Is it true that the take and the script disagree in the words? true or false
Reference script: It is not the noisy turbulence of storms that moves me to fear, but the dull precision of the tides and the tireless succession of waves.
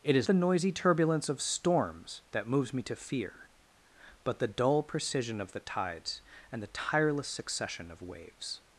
true